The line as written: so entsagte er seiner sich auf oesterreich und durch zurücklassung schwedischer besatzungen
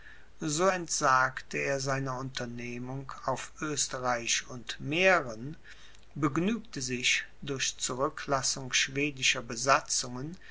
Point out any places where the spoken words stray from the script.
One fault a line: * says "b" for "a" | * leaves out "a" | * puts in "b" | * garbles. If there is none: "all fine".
* says "unternehmung" for "sich"
* puts in "mähren begnügte sich"